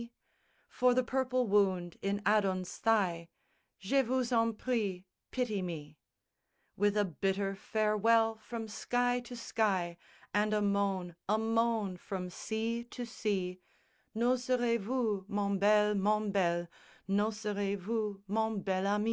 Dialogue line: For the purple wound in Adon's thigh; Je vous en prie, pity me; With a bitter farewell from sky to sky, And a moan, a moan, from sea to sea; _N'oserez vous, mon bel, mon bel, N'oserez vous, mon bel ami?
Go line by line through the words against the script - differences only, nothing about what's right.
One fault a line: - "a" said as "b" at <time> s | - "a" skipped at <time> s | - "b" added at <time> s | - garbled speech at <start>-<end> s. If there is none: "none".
none